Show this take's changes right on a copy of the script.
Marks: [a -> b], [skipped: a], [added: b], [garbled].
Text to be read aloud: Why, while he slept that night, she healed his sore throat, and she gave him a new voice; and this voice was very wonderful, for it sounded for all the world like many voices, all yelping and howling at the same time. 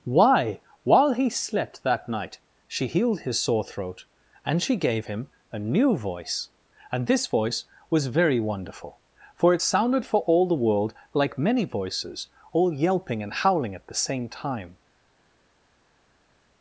Why, while he slept that night, she healed his sore throat, and she gave him a new voice; and this voice was very wonderful, for it sounded for all the world like many voices, all yelping and howling at the same time.